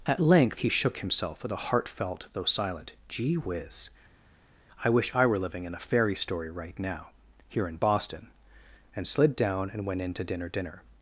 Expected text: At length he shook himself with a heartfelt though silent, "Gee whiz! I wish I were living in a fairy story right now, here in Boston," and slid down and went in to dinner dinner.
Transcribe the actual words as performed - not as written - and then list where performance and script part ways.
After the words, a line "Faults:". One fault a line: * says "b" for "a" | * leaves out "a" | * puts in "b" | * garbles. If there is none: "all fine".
At length he shook himself with a heartfelt though silent, "Gee whiz! I wish I were living in a fairy story right now, here in Boston," and slid down and went in to dinner dinner.
Faults:
all fine